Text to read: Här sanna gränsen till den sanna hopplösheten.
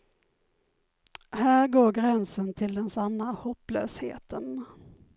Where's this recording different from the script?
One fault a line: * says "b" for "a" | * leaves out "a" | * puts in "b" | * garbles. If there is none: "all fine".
* says "går" for "sanna"